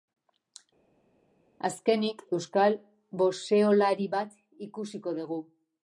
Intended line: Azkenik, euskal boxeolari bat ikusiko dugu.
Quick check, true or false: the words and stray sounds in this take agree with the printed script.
true